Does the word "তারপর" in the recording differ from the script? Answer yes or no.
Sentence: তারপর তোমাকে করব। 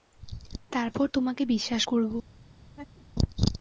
no